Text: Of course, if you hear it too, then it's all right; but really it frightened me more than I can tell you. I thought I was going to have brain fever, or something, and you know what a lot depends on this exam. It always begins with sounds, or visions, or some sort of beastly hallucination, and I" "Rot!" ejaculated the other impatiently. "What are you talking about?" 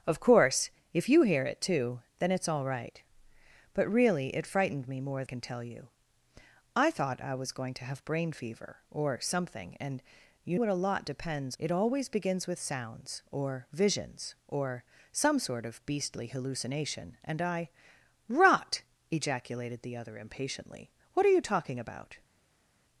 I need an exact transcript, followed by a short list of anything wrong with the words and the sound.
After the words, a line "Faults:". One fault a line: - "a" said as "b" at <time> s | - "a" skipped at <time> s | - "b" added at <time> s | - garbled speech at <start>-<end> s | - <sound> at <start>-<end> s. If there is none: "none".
Of course, if you hear it too, then it's all right; but really it frightened me more can tell you. I thought I was going to have brain fever, or something, and you what a lot depends. It always begins with sounds, or visions, or some sort of beastly hallucination, and I" "Rot!" ejaculated the other impatiently. "What are you talking about?"
Faults:
- "than I" skipped at 5.2 s
- "know" skipped at 10.6 s
- "on this exam" skipped at 11.6 s